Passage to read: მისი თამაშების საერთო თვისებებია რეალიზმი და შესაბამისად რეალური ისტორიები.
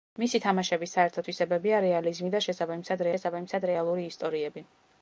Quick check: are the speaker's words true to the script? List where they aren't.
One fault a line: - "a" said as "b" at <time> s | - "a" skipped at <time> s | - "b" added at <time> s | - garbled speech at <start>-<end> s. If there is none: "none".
- "შესაბამისად" added at 3.1 s